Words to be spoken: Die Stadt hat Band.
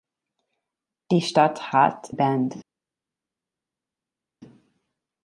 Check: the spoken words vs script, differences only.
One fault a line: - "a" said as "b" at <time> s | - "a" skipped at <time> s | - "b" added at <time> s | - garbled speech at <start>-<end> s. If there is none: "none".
none